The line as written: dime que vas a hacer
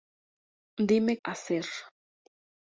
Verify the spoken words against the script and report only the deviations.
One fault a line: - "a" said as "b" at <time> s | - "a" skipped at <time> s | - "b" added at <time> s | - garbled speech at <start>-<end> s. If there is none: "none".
- "que vas" skipped at 1.1 s